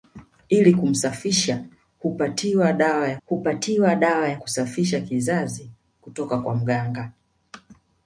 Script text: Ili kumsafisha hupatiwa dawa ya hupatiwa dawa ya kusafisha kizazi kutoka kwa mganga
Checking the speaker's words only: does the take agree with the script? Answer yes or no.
yes